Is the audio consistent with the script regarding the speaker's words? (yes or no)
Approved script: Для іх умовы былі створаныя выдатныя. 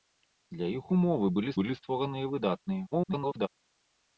no